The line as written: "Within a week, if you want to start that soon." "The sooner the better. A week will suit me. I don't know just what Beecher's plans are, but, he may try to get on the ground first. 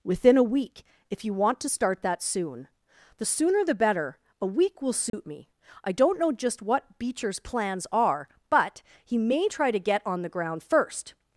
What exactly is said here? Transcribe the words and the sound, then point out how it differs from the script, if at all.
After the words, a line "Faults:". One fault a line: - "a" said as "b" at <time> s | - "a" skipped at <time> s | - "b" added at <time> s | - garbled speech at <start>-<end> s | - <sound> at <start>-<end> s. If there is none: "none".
"Within a week, if you want to start that soon." "The sooner the better. A week will suit me. I don't know just what Beecher's plans are, but, he may try to get on the ground first.
Faults:
- dropout at 5.1-5.1 s